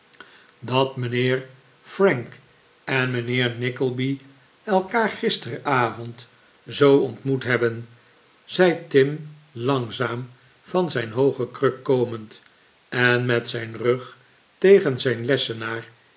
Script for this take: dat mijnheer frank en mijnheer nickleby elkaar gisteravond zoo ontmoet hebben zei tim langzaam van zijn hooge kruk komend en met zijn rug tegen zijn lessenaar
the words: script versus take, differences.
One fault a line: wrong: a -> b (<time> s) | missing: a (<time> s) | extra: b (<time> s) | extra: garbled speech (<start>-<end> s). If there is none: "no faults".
no faults